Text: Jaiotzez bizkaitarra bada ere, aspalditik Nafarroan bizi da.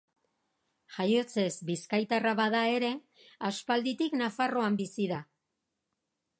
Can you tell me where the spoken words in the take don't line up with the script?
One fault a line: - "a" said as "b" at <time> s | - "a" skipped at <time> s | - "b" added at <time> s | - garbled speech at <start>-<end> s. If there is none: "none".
none